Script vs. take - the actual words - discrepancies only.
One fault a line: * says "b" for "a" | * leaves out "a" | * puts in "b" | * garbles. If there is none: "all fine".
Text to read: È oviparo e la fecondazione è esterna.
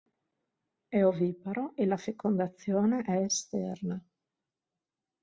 all fine